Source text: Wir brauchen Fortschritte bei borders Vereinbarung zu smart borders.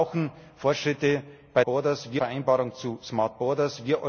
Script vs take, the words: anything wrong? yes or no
no